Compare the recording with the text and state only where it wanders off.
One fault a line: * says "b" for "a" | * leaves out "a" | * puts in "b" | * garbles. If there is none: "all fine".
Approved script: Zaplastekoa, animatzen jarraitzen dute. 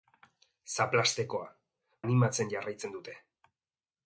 all fine